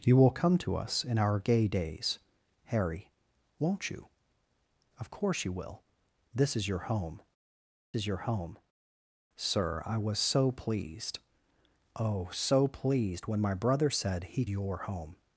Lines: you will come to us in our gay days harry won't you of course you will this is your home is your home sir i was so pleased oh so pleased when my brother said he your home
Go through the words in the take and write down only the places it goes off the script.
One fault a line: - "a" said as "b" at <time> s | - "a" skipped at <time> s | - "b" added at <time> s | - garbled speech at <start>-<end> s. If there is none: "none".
none